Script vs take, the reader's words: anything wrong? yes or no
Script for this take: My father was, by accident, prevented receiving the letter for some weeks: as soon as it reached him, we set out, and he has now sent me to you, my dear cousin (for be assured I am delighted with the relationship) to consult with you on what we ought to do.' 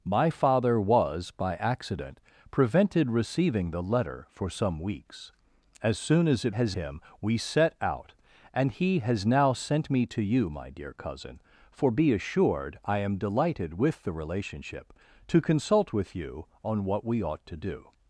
yes